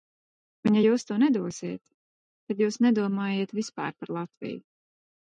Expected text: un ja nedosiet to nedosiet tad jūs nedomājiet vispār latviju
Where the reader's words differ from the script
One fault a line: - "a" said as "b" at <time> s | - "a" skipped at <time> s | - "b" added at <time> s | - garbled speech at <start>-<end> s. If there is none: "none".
- "nedosiet" said as "jūs" at 0.8 s
- "par" added at 4.0 s